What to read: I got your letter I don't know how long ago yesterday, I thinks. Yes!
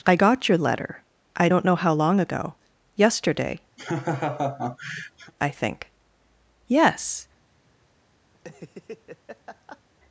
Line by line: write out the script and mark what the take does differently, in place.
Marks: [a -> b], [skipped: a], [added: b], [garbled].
I got your letter I don't know how long ago yesterday, I [thinks. -> think] Yes!